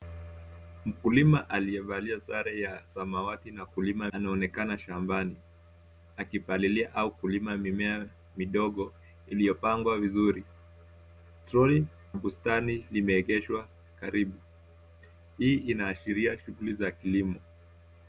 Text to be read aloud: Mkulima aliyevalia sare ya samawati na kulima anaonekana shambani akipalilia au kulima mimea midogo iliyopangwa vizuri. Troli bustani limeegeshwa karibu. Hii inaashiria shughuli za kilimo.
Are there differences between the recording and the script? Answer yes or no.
no